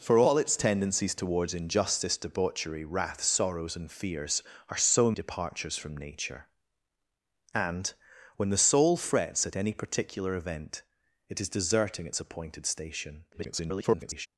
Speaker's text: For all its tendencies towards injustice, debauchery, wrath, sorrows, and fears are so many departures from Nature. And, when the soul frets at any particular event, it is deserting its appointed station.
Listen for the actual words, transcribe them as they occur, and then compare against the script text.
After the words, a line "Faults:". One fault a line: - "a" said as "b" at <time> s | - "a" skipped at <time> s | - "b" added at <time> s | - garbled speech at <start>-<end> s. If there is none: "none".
For all its tendencies towards injustice, debauchery, wrath, sorrows, and fears are so departures from Nature. And, when the soul frets at any particular event, it is deserting its appointed station. [garbled]
Faults:
- "many" skipped at 5.1 s
- garbled speech at 13.3-14.3 s